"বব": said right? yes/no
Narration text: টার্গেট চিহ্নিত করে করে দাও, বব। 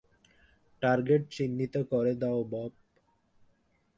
yes